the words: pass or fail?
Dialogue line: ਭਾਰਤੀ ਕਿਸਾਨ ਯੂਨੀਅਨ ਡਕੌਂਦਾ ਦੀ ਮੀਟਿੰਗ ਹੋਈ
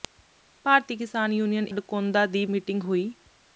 pass